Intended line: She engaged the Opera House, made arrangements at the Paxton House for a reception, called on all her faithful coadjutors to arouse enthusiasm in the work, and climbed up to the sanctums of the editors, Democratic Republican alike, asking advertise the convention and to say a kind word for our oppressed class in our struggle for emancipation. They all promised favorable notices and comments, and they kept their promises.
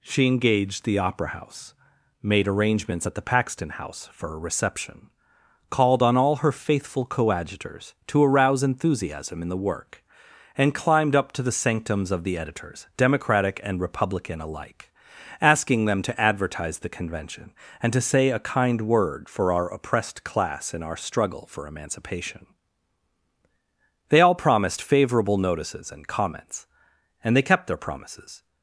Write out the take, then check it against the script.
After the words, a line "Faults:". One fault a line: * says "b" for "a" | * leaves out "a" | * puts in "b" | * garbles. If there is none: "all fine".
She engaged the Opera House, made arrangements at the Paxton House for a reception, called on all her faithful coadjutors to arouse enthusiasm in the work, and climbed up to the sanctums of the editors, Democratic and Republican alike, asking them to advertise the convention and to say a kind word for our oppressed class in our struggle for emancipation. They all promised favorable notices and comments, and they kept their promises.
Faults:
* puts in "and"
* puts in "them to"